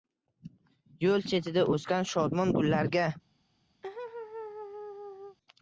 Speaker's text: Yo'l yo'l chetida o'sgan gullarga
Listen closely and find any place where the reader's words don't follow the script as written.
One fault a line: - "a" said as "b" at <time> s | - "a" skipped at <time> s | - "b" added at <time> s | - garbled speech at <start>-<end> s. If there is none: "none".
- "yo'l" skipped at 1.3 s
- "shodmon" added at 2.1 s